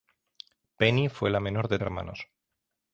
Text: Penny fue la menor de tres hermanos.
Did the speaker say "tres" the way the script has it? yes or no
no